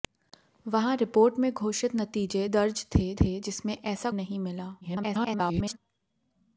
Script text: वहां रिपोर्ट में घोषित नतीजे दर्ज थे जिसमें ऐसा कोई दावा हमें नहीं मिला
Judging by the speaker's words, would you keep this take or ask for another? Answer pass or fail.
fail